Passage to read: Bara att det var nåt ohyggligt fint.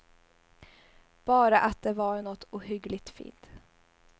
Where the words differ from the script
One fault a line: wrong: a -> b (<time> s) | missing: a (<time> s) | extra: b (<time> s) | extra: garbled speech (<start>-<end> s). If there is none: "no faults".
no faults